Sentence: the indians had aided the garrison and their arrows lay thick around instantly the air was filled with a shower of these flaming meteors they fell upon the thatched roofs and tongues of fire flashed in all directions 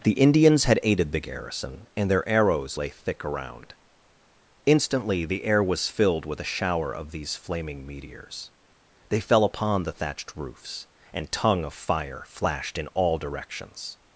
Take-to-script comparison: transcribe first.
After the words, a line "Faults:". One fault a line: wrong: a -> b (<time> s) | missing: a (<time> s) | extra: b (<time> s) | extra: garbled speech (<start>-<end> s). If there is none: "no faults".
the indians had aided the garrison and their arrows lay thick around instantly the air was filled with a shower of these flaming meteors they fell upon the thatched roofs and tongue of fire flashed in all directions
Faults:
wrong: tongues -> tongue (11.3 s)